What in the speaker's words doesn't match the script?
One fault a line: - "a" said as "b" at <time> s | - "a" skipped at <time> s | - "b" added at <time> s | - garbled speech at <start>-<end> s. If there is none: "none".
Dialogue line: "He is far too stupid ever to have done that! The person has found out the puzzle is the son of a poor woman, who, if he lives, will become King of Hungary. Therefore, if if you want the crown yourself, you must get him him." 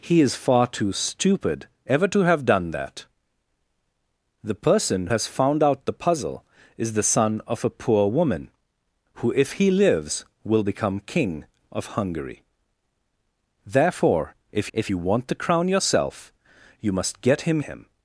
none